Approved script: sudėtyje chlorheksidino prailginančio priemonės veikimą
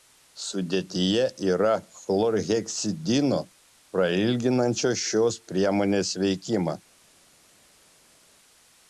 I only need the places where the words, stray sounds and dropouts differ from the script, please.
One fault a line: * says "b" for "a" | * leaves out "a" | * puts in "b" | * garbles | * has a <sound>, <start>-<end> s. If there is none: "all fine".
* puts in "yra"
* puts in "šios"